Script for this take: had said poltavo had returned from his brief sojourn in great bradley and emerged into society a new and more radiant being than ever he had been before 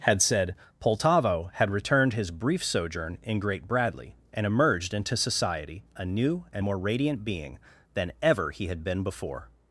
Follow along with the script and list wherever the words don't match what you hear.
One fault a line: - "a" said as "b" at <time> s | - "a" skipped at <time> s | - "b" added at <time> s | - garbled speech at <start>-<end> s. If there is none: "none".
- "from" skipped at 2.1 s